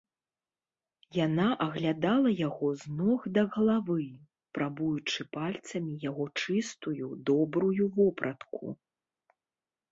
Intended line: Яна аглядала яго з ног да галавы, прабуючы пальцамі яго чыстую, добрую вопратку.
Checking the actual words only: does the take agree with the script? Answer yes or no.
yes